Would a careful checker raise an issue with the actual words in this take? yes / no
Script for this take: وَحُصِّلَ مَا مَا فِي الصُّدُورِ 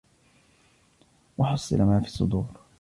yes